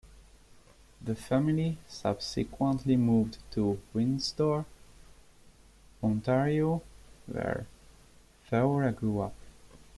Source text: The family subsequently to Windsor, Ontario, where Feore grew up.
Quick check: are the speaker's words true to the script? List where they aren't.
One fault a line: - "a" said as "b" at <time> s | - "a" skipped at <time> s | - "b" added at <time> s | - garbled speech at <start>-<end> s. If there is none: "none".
- "moved" added at 3.0 s